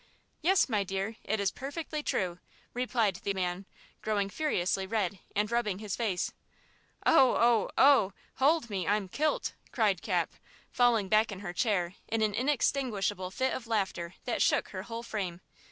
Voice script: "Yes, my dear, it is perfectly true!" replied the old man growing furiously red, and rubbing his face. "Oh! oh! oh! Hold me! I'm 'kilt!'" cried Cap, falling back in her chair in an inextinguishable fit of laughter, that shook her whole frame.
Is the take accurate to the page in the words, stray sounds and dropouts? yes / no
no